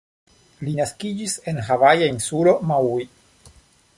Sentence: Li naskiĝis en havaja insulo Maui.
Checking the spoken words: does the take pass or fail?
pass